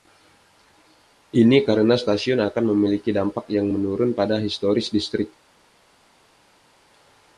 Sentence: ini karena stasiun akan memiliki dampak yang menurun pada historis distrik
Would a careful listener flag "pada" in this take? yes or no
no